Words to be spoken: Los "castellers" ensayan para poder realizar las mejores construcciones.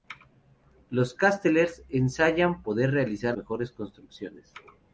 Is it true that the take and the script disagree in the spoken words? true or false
true